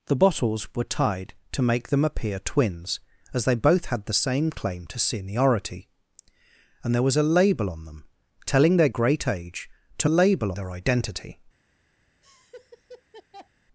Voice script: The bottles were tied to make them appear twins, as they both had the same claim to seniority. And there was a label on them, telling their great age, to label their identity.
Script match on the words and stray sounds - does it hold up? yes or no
no